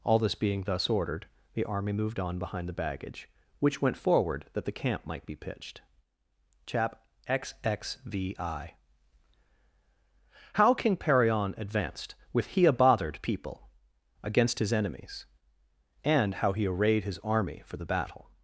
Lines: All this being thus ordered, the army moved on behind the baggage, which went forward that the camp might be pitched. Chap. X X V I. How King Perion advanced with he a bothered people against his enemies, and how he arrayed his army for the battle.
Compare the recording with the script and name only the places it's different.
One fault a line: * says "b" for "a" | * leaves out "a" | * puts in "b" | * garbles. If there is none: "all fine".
all fine